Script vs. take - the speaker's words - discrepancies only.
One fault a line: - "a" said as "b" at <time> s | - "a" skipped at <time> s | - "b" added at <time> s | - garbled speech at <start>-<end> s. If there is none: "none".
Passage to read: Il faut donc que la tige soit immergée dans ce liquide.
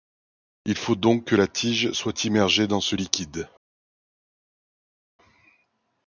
none